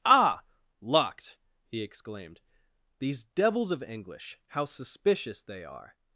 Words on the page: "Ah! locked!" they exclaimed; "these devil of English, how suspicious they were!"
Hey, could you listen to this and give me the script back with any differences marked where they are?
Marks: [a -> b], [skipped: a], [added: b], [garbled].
"Ah! locked!" [they -> he] exclaimed; "these [devil -> devils] of English, how suspicious they [were!" -> are]